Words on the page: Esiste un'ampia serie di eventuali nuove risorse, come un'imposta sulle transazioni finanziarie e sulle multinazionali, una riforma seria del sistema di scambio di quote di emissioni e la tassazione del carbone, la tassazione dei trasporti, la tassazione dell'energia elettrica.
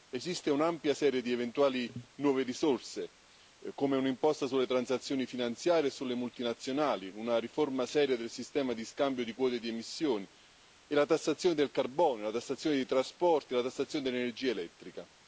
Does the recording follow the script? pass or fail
pass